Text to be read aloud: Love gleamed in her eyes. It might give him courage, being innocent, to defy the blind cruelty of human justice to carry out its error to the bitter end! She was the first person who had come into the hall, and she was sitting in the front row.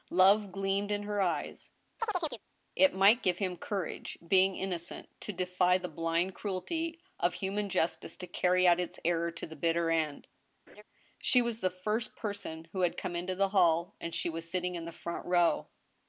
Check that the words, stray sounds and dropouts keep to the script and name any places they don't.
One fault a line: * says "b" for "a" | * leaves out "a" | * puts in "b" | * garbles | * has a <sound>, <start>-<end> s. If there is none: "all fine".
* has a chirp, 2.0-2.4 s
* has a laugh, 10.7-10.8 s